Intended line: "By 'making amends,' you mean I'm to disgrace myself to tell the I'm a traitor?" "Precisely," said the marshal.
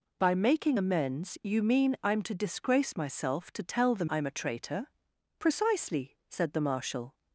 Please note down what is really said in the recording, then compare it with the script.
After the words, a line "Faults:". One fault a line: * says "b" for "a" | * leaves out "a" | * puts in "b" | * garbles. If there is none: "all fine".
"By 'making amends,' you mean I'm to disgrace myself to tell the I'm a traitor?" "Precisely," said the marshal.
Faults:
all fine